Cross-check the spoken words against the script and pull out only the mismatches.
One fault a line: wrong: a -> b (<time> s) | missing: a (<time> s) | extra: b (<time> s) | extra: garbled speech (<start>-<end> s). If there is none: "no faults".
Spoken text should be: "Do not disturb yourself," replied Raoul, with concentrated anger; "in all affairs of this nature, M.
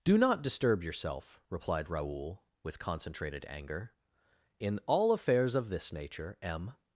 no faults